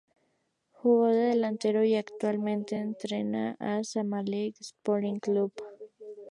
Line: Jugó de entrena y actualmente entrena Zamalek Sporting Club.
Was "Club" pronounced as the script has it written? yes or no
yes